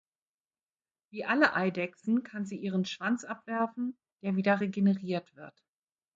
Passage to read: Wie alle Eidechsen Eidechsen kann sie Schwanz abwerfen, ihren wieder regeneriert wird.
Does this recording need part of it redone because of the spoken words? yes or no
yes